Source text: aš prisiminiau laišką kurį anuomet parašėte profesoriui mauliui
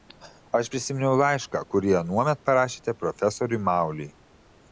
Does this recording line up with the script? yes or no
yes